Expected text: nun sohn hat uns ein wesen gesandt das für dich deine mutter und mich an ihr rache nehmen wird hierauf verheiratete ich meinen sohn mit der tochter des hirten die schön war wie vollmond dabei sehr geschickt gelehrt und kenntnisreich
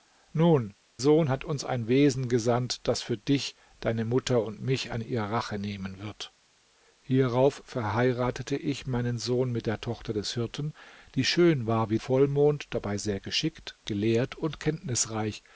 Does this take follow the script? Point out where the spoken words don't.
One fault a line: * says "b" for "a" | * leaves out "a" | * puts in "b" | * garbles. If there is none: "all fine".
all fine